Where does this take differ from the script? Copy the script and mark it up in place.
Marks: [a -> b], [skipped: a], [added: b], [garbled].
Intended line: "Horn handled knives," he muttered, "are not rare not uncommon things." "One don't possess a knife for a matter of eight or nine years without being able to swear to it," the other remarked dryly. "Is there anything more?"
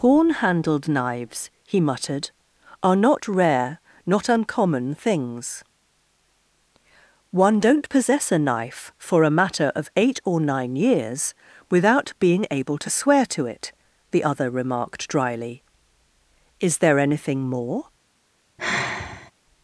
"Horn handled knives," he muttered, "are not rare not uncommon things." "One don't possess a knife for a matter of eight or nine years without being able to swear to it," the other remarked dryly. "Is there anything more?"